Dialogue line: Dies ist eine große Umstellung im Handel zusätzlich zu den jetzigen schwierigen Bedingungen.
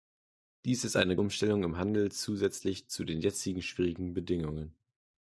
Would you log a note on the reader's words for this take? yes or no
yes